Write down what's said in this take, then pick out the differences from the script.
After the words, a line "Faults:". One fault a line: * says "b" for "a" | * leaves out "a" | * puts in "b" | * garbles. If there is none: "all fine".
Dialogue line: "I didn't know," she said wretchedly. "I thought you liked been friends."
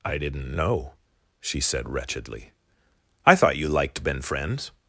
"I didn't know," she said wretchedly. "I thought you liked been friends."
Faults:
all fine